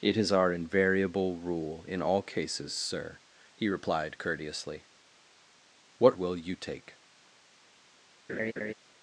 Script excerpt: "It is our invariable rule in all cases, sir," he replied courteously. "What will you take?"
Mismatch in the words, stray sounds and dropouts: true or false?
true